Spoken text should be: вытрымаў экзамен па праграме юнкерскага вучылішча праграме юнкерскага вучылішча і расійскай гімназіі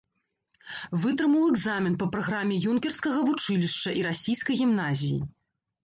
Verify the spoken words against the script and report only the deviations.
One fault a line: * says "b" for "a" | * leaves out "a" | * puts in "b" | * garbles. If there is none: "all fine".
* leaves out "праграме юнкерскага вучылішча"